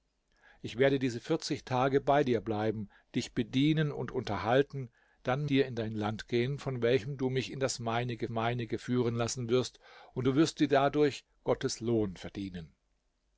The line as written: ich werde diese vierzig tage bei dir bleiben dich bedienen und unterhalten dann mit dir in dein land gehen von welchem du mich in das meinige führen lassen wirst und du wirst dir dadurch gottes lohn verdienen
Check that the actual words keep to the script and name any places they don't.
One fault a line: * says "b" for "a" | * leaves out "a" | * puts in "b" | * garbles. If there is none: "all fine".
* leaves out "mit"
* puts in "meinige"